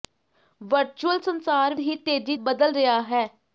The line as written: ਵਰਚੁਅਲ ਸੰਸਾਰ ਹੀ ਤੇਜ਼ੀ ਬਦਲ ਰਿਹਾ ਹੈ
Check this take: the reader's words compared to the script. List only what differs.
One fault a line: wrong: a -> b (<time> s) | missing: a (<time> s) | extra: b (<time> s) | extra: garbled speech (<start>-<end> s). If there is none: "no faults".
no faults